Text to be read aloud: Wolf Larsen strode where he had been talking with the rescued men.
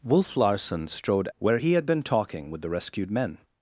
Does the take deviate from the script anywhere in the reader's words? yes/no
no